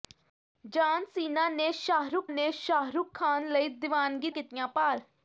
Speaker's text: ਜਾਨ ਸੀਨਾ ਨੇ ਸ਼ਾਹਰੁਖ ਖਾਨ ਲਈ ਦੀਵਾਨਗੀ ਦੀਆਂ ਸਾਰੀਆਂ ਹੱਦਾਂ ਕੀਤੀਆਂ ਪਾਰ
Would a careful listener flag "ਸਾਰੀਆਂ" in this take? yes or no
yes